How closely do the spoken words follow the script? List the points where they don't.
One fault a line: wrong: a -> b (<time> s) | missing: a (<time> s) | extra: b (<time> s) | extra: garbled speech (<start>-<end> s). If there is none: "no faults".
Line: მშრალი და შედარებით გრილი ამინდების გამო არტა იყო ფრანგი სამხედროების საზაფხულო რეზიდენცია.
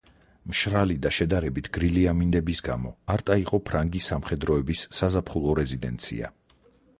no faults